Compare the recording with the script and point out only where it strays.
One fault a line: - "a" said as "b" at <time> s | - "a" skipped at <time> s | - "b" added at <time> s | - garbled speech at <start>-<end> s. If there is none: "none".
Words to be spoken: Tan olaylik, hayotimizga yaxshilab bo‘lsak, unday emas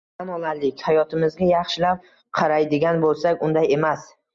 - "qaraydigan" added at 2.4 s